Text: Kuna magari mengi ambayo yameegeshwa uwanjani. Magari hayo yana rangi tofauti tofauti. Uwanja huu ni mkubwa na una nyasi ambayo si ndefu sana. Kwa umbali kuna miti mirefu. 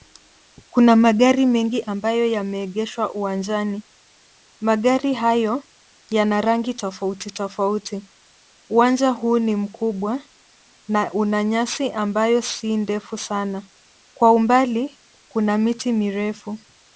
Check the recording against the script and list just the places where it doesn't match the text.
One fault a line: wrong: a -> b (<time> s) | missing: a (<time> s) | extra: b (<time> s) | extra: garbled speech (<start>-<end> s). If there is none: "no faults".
no faults